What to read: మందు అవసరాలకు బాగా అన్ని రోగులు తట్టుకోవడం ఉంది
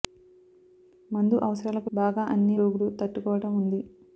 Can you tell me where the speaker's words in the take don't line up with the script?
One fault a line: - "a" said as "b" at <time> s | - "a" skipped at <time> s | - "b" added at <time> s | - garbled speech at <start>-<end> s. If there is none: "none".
none